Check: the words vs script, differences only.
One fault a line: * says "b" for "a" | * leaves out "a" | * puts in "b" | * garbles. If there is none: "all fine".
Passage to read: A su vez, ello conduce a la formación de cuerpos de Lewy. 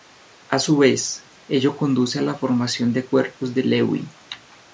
all fine